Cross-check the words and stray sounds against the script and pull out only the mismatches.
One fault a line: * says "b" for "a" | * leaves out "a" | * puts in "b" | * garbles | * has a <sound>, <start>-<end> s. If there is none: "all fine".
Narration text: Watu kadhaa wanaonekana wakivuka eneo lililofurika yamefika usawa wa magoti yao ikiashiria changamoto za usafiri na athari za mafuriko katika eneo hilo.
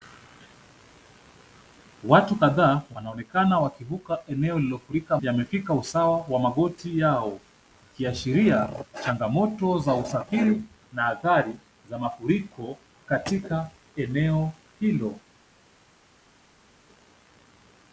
all fine